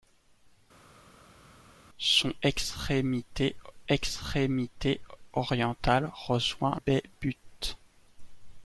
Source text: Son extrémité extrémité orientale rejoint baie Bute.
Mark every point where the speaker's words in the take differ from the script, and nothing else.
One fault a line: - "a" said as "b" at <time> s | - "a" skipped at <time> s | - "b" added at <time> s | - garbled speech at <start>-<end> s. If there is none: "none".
none